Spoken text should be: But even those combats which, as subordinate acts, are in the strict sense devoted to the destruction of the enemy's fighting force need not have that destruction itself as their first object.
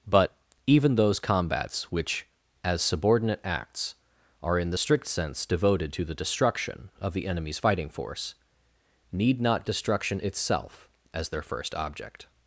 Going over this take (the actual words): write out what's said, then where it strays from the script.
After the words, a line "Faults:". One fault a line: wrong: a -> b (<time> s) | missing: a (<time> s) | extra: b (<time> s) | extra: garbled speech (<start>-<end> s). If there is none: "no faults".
But even those combats which, as subordinate acts, are in the strict sense devoted to the destruction of the enemy's fighting force need not destruction itself as their first object.
Faults:
missing: have that (9.7 s)